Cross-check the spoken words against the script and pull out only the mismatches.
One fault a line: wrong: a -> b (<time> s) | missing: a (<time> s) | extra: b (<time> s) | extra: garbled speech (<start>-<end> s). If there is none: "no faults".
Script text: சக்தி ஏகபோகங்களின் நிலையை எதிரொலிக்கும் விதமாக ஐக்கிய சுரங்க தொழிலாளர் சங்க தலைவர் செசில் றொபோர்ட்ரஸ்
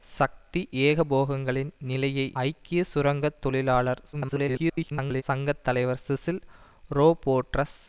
missing: எதிரொலிக்கும் விதமாக (2.3 s)
extra: garbled speech (4.1-5.2 s)